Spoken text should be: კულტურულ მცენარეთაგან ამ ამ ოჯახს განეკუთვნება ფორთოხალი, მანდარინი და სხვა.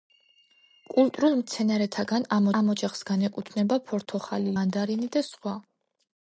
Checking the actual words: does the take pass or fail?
pass